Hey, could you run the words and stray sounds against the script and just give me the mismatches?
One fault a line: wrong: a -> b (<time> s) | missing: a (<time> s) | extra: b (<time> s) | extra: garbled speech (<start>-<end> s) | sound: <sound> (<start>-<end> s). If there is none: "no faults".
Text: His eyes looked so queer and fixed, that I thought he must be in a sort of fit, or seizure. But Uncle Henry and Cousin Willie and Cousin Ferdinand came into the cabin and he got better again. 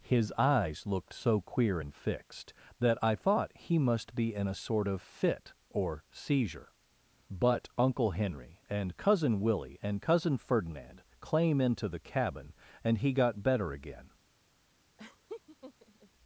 wrong: came -> claim (11.2 s)
sound: laugh (15.0-16.1 s)